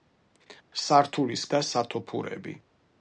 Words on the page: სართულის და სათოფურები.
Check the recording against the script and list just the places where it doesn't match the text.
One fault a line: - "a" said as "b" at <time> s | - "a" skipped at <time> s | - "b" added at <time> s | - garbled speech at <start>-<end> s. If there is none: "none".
none